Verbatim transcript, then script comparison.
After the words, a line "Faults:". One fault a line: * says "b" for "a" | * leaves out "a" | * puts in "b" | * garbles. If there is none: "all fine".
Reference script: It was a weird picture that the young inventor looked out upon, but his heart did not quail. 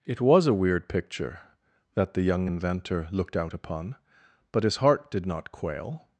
It was a weird picture that the young inventor looked out upon, but his heart did not quail.
Faults:
all fine